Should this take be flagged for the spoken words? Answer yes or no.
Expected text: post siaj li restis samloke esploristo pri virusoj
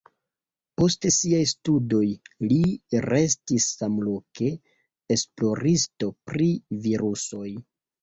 yes